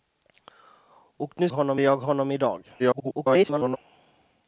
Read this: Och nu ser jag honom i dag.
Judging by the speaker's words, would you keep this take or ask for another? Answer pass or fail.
fail